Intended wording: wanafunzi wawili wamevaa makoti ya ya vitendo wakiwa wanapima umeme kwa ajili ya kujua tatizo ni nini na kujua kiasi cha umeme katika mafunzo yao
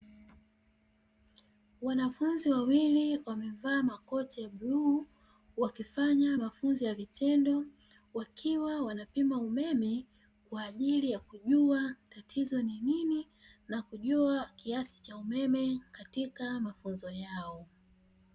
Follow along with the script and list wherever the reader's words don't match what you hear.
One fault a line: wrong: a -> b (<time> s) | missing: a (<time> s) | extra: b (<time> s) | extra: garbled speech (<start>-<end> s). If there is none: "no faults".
extra: bluu wakifanya mafunzo (4.5 s)